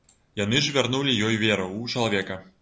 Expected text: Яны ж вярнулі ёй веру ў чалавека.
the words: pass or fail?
pass